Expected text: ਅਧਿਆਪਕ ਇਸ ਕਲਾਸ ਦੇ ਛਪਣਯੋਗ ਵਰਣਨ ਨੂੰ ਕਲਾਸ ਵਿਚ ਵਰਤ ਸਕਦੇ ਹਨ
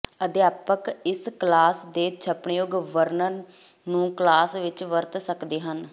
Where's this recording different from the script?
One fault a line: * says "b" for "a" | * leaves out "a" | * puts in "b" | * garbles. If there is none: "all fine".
all fine